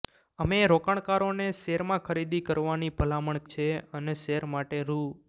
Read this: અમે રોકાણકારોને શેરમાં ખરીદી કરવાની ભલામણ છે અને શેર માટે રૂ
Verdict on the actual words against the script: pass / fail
pass